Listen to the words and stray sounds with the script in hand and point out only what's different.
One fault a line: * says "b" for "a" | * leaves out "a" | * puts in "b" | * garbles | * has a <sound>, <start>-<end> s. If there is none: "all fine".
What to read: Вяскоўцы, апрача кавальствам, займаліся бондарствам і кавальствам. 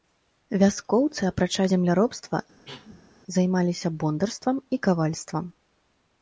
* says "земляробства" for "кавальствам"
* has a cough, 2.7-3.1 s